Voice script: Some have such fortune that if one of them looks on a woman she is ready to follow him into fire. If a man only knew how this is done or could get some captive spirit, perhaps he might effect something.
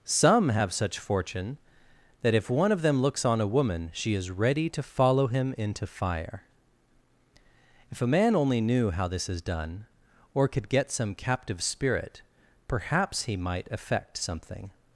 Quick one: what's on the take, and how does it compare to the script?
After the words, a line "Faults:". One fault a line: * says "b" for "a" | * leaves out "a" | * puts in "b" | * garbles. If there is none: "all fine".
Some have such fortune that if one of them looks on a woman she is ready to follow him into fire. If a man only knew how this is done or could get some captive spirit, perhaps he might effect something.
Faults:
all fine